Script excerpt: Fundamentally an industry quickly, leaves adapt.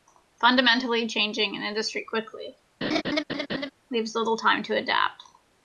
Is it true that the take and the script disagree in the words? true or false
true